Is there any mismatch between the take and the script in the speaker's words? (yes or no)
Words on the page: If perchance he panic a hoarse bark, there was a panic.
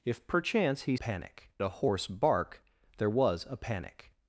no